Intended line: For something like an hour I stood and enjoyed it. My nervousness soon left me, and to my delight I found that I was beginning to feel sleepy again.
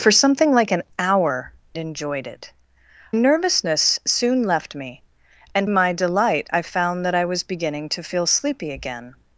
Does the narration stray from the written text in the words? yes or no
yes